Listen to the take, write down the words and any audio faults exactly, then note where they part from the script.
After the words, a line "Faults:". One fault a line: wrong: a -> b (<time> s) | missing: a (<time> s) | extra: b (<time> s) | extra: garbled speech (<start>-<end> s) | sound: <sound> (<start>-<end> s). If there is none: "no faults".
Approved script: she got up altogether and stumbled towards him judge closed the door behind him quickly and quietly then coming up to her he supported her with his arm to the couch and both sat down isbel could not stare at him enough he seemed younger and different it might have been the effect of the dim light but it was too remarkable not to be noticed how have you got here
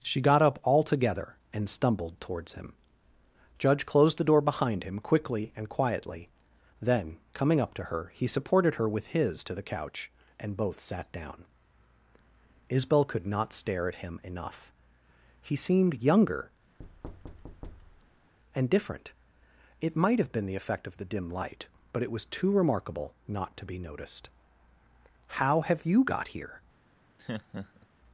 she got up altogether and stumbled towards him judge closed the door behind him quickly and quietly then coming up to her he supported her with his to the couch and both sat down isbel could not stare at him enough he seemed younger and different it might have been the effect of the dim light but it was too remarkable not to be noticed how have you got here
Faults:
missing: arm (9.4 s)
sound: thud (16.8-18.3 s)
sound: laugh (27.2-27.9 s)